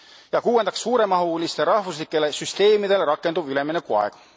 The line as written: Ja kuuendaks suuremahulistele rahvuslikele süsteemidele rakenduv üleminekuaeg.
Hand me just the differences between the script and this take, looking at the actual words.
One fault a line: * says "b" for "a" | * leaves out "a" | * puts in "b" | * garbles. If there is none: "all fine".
all fine